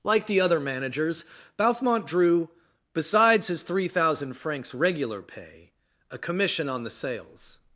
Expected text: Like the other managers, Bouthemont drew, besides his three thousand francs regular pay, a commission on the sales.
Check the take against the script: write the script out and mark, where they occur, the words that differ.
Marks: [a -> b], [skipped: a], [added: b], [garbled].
Like the other managers, Bouthemont drew, besides his three thousand francs regular pay, a commission on the sales.